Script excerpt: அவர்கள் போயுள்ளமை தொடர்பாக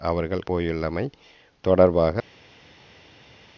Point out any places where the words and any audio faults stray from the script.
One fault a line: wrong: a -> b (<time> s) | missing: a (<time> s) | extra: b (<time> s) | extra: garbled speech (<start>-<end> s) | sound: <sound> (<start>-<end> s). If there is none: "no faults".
no faults